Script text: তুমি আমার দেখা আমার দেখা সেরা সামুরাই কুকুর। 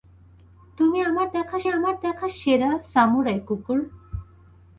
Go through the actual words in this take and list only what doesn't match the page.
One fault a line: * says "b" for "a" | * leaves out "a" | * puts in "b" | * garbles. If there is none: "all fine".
all fine